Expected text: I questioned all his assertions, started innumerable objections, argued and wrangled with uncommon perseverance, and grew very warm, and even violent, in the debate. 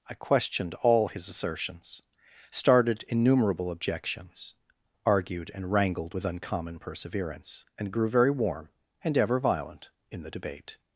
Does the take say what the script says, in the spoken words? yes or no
no